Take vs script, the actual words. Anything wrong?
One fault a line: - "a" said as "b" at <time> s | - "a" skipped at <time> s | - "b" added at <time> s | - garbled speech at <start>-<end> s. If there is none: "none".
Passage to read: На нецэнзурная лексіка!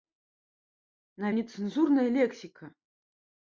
none